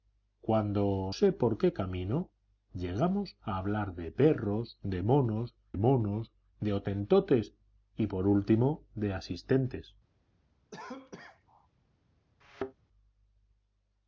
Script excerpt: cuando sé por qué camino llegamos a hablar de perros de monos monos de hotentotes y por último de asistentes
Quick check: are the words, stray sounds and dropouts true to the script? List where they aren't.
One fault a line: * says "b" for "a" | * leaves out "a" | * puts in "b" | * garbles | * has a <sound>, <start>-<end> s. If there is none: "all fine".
* has a cough, 10.7-11.7 s
* has a thud, 12.4-12.7 s